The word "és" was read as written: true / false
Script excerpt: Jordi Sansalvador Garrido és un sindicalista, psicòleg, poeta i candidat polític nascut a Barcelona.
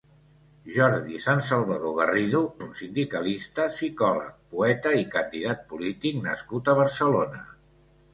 false